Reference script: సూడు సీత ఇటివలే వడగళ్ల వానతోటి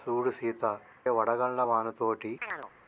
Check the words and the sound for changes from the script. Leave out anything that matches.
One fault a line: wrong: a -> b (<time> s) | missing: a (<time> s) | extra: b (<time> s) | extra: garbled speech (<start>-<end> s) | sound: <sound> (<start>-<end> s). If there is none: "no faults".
missing: ఇటివలే (0.6 s)
sound: chirp (2.4-2.7 s)